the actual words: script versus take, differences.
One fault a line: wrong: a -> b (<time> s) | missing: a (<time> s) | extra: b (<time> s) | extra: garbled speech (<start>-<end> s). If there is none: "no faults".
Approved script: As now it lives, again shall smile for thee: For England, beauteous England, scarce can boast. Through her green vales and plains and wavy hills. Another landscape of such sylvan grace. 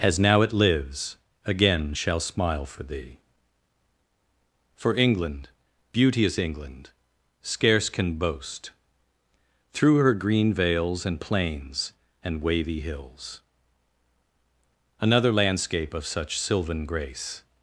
no faults